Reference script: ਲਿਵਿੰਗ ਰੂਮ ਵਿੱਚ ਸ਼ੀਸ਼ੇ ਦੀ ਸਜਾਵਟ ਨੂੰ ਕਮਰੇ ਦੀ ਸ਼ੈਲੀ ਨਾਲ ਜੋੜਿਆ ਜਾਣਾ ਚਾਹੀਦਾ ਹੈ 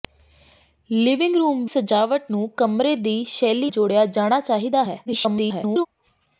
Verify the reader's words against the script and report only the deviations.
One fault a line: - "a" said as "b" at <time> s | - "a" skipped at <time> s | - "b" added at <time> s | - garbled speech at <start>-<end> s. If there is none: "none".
- "ਵਿੱਚ ਸ਼ੀਸ਼ੇ ਦੀ" skipped at 1.6 s
- "ਨਾਲ" skipped at 3.7 s
- garbled speech at 5.1-5.9 s